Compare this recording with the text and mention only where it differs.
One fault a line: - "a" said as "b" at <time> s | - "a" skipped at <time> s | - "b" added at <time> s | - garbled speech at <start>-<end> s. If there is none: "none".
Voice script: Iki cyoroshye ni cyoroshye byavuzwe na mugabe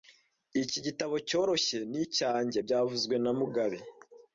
- "gitabo" added at 0.9 s
- "cyoroshye" said as "icyanjye" at 2.0 s